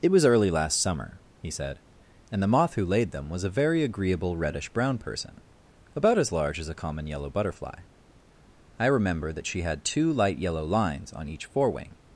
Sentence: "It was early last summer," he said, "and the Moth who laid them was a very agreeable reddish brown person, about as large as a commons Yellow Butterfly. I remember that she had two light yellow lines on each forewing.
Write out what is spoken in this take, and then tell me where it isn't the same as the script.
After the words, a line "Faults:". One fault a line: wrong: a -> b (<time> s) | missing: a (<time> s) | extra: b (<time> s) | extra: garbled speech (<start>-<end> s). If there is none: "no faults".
"It was early last summer," he said, "and the Moth who laid them was a very agreeable reddish brown person, about as large as a common Yellow Butterfly. I remember that she had two light yellow lines on each forewing.
Faults:
wrong: commons -> common (6.7 s)